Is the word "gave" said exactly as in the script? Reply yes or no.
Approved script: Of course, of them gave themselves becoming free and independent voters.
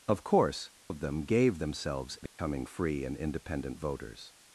yes